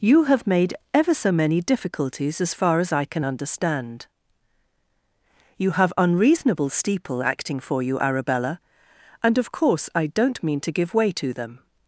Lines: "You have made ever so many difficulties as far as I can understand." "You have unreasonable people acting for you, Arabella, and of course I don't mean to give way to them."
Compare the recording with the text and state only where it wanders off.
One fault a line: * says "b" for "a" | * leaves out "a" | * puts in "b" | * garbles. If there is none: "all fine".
* says "steeple" for "people"